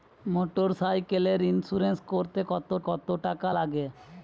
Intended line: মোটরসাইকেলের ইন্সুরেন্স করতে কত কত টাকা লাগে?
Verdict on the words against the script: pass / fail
pass